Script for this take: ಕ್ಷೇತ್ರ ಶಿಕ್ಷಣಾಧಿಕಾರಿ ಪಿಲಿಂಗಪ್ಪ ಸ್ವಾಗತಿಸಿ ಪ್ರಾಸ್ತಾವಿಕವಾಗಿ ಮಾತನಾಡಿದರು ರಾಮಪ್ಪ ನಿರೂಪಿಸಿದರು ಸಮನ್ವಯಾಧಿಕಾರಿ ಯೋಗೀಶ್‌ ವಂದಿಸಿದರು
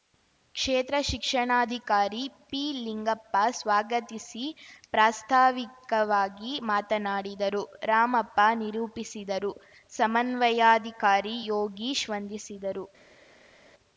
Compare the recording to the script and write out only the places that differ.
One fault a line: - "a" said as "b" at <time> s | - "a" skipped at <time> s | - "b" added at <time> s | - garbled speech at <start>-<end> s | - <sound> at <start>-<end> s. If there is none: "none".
none